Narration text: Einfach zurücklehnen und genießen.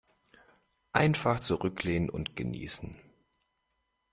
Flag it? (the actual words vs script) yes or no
no